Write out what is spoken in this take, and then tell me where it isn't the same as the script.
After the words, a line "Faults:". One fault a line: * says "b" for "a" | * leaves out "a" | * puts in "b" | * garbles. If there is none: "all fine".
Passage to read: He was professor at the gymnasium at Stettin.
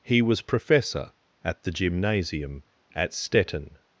He was professor at the gymnasium at Stettin.
Faults:
all fine